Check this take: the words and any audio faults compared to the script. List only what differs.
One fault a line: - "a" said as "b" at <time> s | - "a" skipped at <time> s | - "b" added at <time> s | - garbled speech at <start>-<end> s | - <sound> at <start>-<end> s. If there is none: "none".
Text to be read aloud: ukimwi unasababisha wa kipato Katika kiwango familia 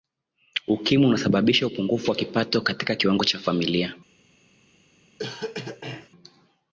- "upungufu" added at 1.6 s
- "cha" added at 3.2 s
- cough at 5.2-6.1 s